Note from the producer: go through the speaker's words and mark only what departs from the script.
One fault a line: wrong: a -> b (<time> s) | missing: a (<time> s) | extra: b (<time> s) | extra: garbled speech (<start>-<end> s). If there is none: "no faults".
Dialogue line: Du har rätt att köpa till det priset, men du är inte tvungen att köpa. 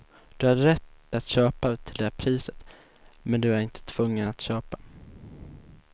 no faults